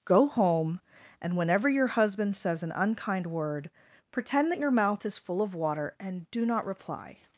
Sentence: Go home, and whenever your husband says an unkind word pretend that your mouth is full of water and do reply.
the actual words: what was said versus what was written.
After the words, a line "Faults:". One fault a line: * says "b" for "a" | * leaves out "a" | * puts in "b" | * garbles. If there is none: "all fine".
Go home, and whenever your husband says an unkind word pretend that your mouth is full of water and do not reply.
Faults:
* puts in "not"